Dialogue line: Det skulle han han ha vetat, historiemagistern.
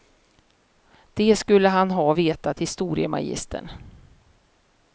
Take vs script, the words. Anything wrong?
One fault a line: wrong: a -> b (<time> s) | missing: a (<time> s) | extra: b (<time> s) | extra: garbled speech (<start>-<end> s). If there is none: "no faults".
missing: han (1.9 s)